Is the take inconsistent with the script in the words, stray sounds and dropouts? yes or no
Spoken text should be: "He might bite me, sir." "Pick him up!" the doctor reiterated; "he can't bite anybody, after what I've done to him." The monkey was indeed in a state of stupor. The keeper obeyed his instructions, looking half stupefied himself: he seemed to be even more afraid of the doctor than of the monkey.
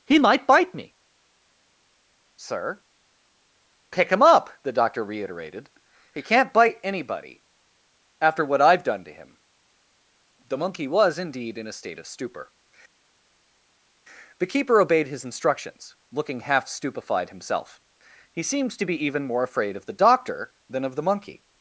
no